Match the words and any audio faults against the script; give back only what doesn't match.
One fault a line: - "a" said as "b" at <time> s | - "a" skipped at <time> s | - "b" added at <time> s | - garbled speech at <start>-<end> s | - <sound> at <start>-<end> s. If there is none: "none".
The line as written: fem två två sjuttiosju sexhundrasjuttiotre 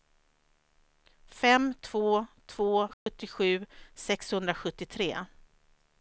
- dropout at 2.9-3.1 s